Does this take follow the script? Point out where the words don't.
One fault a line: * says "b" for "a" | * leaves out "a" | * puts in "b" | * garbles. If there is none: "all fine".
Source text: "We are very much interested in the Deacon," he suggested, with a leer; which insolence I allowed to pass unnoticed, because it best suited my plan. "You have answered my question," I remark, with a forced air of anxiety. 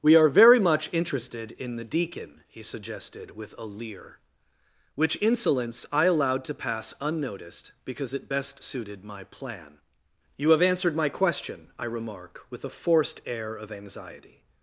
all fine